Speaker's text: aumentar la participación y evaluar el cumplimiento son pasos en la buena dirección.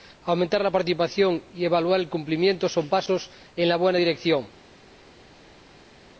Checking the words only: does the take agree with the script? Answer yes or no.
yes